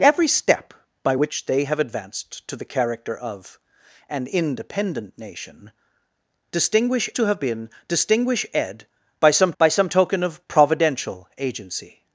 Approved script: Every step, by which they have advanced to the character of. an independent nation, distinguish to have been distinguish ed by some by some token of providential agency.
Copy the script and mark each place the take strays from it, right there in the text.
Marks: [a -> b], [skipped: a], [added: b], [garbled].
Every step, by which they have advanced to the character of. an independent nation, distinguish to have been distinguish ed by some by some token of providential agency.